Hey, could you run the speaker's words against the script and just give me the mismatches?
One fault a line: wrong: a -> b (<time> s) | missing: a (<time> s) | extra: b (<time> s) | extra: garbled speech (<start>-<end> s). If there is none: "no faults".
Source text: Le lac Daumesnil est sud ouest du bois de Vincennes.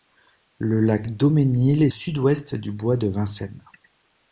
no faults